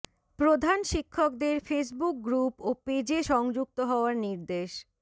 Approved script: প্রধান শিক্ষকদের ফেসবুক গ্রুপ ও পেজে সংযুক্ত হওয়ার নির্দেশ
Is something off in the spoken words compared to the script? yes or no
no